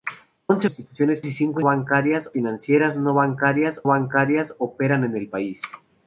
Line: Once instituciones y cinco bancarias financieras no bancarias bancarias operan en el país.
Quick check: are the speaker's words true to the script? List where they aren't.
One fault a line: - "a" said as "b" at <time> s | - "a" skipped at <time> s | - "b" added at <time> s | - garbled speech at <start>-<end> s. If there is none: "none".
none